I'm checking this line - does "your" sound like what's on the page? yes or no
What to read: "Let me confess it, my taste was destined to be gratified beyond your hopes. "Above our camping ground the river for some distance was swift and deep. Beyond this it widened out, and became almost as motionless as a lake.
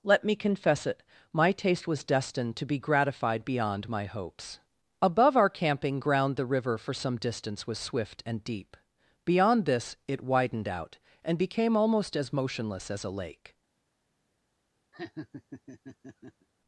no